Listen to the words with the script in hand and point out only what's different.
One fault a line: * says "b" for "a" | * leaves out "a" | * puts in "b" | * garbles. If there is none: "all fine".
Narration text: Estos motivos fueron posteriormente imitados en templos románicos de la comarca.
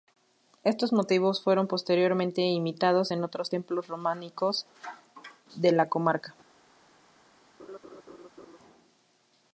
* puts in "otros"